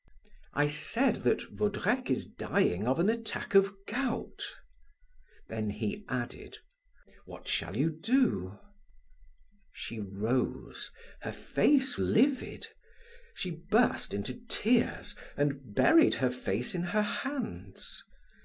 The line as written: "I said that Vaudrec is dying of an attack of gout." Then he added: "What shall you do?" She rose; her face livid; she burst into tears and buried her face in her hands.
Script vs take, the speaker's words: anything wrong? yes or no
no